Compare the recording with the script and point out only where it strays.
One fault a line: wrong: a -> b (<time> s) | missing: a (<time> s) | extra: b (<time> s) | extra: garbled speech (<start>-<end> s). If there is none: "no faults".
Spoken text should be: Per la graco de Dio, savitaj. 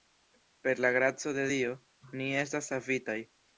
extra: ni estas (2.2 s)